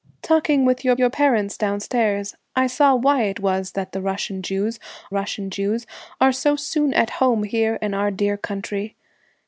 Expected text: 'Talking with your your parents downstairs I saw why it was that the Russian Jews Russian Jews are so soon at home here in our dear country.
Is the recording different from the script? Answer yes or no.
no